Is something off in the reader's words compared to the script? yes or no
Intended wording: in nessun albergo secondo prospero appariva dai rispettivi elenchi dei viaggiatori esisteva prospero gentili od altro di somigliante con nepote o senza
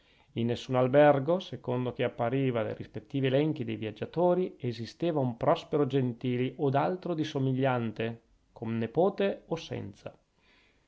yes